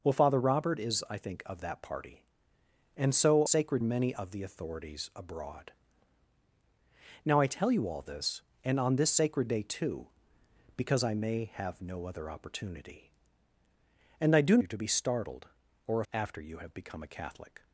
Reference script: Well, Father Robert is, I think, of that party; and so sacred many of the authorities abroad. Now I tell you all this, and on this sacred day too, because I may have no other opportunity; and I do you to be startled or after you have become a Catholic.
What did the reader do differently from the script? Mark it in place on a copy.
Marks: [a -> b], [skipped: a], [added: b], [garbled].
Well, Father Robert is, I think, of that party; and so sacred many of the authorities abroad. Now I tell you all this, and on this sacred day too, because I may have no other opportunity; and I do you to be startled or after you have become a Catholic.